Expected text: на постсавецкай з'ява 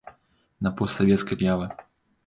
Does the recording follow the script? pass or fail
pass